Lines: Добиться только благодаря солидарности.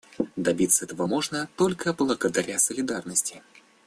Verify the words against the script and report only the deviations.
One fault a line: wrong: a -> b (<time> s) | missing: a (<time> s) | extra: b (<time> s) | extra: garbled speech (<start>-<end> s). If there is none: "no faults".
extra: этого можно (0.8 s)